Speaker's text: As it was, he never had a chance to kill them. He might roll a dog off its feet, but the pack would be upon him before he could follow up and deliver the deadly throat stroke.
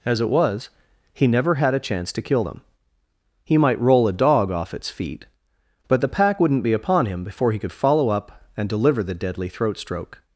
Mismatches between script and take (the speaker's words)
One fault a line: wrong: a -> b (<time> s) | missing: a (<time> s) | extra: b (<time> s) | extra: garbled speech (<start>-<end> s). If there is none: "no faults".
wrong: would -> wouldn't (6.4 s)